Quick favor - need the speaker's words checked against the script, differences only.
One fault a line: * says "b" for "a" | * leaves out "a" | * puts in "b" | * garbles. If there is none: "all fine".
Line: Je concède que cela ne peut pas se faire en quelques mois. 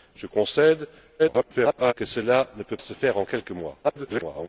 * garbles
* leaves out "pas"
* garbles